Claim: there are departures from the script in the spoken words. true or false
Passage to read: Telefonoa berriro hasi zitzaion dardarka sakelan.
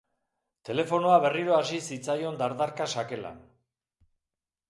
false